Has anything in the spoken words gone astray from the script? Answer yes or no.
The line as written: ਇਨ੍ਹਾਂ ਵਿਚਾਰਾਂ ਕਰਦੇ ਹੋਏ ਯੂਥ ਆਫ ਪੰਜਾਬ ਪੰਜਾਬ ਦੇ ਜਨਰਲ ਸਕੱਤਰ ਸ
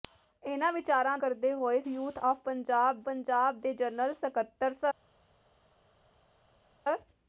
no